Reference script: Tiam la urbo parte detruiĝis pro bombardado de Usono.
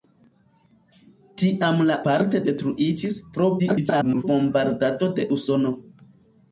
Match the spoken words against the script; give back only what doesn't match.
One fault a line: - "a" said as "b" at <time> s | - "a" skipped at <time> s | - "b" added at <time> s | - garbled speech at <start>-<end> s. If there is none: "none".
- "urbo" skipped at 2.0 s
- garbled speech at 3.6-4.2 s